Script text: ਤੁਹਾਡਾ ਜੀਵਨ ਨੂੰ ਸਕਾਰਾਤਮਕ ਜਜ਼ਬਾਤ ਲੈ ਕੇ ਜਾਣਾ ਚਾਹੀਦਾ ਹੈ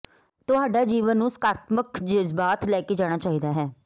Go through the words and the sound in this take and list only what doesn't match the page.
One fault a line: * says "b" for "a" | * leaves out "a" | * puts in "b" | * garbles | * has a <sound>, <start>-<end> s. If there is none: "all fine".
all fine